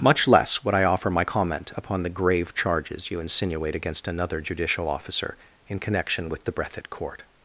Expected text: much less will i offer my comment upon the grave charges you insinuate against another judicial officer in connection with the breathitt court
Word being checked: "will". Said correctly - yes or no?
no